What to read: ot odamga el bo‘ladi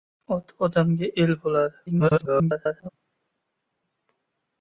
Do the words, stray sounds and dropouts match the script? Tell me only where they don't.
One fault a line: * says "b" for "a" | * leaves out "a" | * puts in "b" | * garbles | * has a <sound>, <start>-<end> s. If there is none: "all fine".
* garbles